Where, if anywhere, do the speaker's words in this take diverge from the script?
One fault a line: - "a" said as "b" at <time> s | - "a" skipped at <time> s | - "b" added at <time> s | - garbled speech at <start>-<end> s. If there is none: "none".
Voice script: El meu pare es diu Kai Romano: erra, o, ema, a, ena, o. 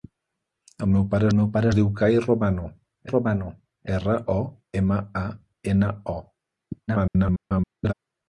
- "meu pare" added at 1.3 s
- "Romano" added at 3.1 s
- garbled speech at 6.9-7.9 s